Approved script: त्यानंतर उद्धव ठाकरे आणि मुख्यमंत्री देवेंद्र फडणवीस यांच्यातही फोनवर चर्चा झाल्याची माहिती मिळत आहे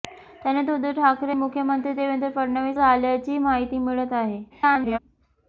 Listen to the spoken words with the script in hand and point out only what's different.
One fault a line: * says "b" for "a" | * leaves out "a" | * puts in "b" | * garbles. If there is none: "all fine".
* leaves out "आणि"
* leaves out "यांच्यातही फोनवर चर्चा"
* garbles